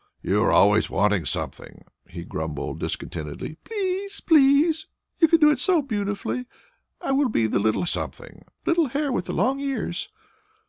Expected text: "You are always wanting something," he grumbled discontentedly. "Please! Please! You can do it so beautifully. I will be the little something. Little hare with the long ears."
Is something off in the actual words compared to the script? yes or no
no